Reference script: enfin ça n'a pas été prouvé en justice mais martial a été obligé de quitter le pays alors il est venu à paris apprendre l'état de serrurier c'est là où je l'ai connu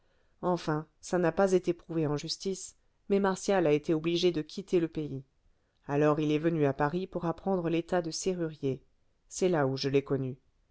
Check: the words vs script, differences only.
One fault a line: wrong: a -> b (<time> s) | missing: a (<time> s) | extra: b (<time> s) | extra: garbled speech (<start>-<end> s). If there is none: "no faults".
extra: pour (7.1 s)